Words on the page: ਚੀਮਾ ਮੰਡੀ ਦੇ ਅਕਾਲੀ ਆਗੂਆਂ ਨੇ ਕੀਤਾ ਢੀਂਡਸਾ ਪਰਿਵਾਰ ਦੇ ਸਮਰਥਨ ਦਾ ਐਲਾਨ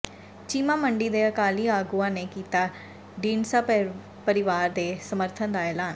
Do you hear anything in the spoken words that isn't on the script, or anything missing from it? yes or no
no